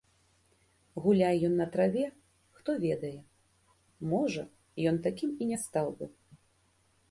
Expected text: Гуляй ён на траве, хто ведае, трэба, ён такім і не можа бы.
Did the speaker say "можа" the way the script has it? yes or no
no